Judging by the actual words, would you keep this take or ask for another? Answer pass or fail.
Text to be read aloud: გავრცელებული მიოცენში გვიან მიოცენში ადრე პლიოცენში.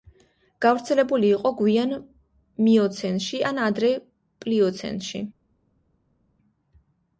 fail